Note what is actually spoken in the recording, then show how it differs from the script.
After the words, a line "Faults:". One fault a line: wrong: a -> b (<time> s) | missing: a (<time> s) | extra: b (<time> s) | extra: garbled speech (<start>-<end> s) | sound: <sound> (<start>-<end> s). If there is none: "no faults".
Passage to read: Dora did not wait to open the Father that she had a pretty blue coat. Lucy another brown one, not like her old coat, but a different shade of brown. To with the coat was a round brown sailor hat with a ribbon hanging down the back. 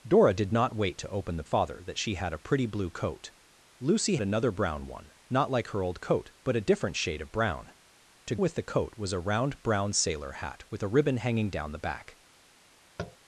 Dora did not wait to open the Father that she had a pretty blue coat. Lucy another brown one, not like her old coat, but a different shade of brown. To with the coat was a round brown sailor hat with a ribbon hanging down the back.
Faults:
sound: tap (13.0-13.2 s)